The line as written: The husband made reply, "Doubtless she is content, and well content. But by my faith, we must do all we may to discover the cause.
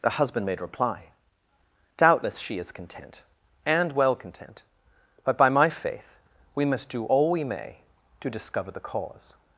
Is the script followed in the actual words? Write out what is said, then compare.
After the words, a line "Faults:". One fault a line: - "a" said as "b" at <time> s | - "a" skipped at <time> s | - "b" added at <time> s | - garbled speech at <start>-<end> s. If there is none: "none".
The husband made reply, "Doubtless she is content, and well content. But by my faith, we must do all we may to discover the cause.
Faults:
none